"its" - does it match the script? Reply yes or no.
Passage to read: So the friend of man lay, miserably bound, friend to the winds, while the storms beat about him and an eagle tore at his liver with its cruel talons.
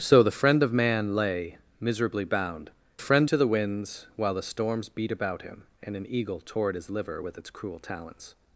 yes